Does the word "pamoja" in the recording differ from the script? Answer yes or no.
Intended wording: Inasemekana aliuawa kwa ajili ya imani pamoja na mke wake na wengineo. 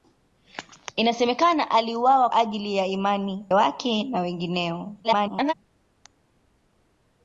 yes